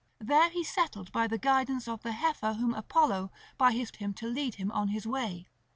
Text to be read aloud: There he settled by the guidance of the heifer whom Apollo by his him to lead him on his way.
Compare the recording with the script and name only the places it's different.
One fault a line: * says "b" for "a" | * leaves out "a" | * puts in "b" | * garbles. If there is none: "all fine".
all fine